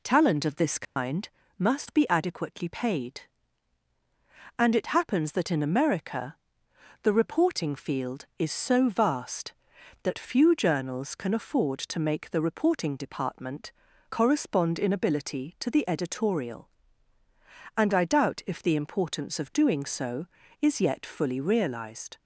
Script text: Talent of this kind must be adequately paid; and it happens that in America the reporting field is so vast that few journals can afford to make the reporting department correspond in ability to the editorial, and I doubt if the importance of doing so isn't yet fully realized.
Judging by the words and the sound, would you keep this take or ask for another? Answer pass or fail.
fail